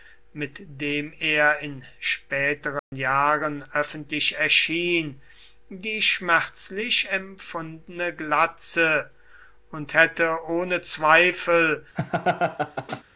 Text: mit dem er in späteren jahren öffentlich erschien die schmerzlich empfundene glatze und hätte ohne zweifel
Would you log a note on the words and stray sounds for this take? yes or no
yes